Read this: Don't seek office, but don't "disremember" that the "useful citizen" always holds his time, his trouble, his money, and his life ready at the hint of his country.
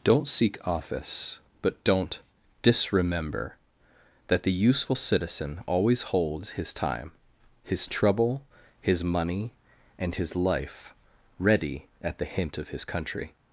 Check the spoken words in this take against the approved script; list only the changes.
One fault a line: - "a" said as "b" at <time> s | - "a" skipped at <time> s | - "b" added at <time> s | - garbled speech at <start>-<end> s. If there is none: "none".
none